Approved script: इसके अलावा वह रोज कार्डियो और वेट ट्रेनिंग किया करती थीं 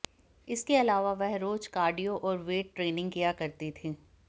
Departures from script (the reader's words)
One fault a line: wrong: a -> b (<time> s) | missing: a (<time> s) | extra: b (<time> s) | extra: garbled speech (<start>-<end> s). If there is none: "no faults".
no faults